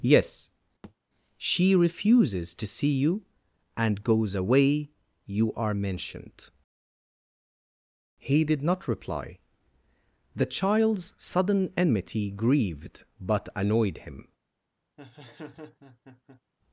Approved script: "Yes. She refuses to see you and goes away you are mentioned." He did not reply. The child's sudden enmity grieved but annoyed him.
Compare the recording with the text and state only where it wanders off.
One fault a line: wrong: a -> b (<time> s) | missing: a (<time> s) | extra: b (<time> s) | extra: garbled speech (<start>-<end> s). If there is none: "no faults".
no faults